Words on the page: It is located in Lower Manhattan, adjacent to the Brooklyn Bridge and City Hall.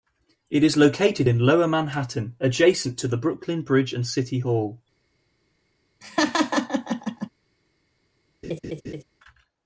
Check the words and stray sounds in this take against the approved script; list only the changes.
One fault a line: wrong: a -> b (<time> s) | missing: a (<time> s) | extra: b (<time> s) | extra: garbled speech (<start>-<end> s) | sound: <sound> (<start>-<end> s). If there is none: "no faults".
sound: laugh (6.0-7.3 s)
sound: laugh (8.4-9.0 s)